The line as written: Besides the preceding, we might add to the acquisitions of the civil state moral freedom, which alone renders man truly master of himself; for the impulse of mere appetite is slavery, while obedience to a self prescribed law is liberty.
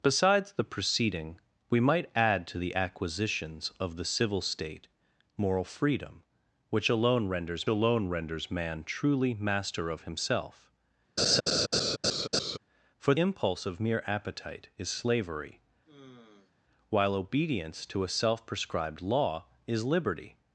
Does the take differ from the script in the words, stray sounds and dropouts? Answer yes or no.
yes